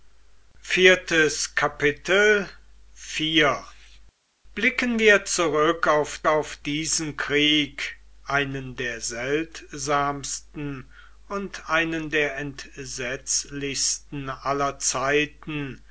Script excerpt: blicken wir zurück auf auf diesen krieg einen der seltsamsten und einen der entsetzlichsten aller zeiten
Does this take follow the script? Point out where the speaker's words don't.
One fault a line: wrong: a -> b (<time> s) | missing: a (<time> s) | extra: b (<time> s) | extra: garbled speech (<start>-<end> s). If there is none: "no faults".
no faults